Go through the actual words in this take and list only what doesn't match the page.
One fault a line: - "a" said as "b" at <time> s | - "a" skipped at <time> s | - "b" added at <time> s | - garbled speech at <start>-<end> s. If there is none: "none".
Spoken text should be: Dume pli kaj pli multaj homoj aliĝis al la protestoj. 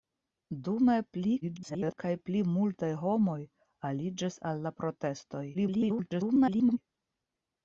- garbled speech at 1.4-2.0 s
- garbled speech at 5.5-6.8 s